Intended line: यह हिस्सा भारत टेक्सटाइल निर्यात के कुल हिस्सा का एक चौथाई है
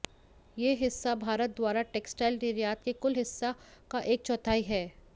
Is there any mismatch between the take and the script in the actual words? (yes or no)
yes